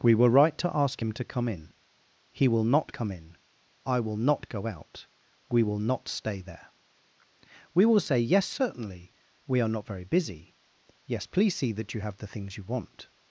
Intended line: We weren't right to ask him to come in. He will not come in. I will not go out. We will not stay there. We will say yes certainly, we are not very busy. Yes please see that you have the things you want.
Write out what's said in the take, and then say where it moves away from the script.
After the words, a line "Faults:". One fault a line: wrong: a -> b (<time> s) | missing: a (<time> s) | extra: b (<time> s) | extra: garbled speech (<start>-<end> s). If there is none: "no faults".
We were right to ask him to come in. He will not come in. I will not go out. We will not stay there. We will say yes certainly, we are not very busy. Yes please see that you have the things you want.
Faults:
wrong: weren't -> were (0.1 s)